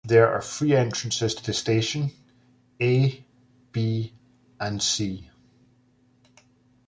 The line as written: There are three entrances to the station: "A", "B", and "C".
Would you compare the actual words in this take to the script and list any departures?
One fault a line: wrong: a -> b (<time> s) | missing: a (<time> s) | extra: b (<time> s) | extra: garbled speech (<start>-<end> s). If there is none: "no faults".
no faults